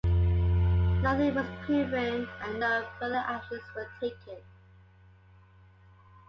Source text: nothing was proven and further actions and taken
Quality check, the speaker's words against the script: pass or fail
fail